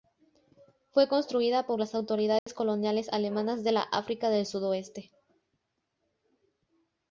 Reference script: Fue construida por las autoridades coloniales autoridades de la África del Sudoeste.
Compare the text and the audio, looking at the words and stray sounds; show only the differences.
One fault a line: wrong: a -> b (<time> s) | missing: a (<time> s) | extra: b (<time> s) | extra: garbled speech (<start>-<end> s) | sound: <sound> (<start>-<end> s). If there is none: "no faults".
sound: dropout (2.4-2.5 s)
wrong: autoridades -> alemanas (3.1 s)